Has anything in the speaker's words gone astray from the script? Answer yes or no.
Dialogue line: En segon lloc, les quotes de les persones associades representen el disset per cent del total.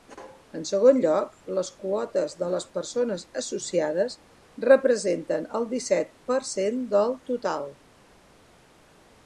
no